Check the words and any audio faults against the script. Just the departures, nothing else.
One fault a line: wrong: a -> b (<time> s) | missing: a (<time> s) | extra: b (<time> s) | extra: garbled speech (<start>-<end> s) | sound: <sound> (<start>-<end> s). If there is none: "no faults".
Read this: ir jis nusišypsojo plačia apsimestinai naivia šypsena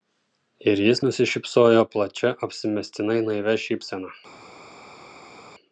no faults